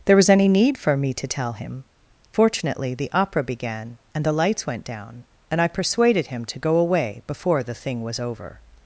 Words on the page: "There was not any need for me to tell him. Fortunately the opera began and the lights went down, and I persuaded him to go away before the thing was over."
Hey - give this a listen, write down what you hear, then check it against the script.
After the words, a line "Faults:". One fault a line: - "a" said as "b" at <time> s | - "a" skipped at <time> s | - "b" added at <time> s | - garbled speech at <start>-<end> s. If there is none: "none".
"There was any need for me to tell him. Fortunately the opera began and the lights went down, and I persuaded him to go away before the thing was over."
Faults:
- "not" skipped at 0.3 s